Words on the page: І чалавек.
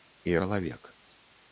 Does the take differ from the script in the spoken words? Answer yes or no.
no